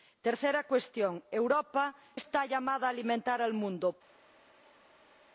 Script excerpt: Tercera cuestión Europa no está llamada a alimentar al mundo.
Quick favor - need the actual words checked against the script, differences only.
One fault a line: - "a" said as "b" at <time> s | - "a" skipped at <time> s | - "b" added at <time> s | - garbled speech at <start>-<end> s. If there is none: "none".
- "no" skipped at 1.9 s